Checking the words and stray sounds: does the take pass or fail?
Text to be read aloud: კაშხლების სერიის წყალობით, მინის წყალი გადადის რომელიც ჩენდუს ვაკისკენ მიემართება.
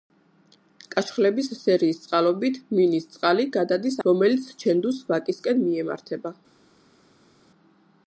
pass